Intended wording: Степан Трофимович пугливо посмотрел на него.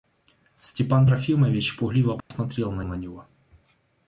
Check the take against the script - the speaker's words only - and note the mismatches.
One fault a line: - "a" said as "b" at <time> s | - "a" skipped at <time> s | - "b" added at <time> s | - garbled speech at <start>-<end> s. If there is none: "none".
- "на" added at 2.8 s